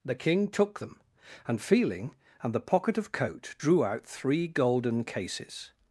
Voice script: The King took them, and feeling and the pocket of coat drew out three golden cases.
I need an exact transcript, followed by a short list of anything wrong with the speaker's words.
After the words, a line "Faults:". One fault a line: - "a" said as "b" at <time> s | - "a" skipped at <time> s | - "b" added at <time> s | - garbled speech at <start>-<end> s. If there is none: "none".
The King took them, and feeling and the pocket of coat drew out three golden cases.
Faults:
none